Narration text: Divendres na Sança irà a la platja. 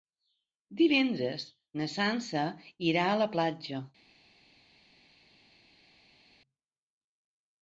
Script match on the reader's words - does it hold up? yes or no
yes